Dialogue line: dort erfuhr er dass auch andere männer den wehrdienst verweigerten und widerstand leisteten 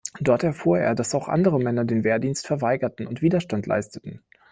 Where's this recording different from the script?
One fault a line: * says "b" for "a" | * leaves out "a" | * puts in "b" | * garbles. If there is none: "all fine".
all fine